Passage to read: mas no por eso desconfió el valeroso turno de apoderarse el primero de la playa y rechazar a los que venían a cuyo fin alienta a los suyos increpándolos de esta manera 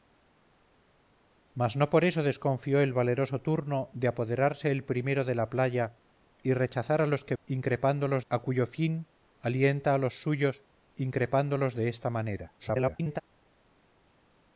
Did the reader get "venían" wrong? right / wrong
wrong